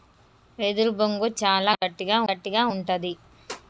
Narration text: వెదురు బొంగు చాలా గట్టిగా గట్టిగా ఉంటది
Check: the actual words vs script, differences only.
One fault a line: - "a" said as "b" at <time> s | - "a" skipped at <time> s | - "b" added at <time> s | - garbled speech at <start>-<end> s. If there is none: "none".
none